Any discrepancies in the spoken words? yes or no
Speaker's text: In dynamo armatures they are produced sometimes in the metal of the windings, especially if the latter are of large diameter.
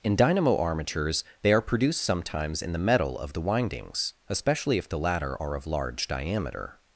no